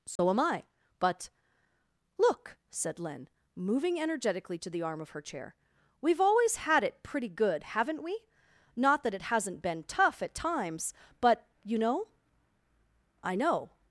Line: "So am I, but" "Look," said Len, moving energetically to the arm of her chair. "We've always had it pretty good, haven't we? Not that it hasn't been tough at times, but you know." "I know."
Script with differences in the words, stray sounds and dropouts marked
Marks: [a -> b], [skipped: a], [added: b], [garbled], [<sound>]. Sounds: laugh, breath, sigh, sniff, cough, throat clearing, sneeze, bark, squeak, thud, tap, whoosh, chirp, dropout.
"So [dropout] am I, but" "Look," said Len, moving energetically to the arm of her chair. "We've always had it pretty good, haven't we? Not that it hasn't been tough at times, but you know." "I know."